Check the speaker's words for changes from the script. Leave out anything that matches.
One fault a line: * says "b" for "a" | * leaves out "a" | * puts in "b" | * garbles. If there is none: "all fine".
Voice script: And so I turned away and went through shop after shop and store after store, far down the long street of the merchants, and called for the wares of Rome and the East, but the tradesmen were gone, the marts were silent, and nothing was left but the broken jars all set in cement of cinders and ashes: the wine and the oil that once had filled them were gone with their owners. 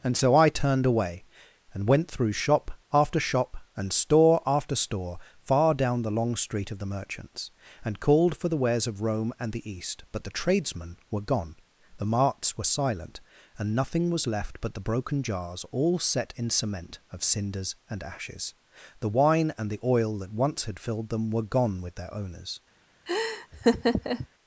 all fine